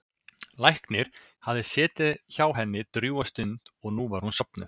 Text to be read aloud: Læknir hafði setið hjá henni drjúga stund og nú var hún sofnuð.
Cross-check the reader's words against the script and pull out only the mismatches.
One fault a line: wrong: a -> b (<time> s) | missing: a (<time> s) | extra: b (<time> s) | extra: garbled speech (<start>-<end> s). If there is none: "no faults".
no faults